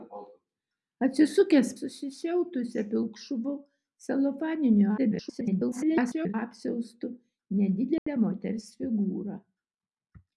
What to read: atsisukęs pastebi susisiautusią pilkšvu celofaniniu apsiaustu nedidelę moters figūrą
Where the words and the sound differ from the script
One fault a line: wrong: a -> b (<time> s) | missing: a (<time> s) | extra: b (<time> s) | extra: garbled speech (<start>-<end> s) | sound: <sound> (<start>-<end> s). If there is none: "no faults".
missing: pastebi (1.7 s)
extra: garbled speech (5.0-6.3 s)
sound: dropout (8.0-8.1 s)